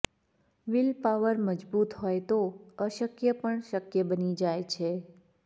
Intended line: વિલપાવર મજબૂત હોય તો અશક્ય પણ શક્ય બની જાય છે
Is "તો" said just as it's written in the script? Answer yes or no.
yes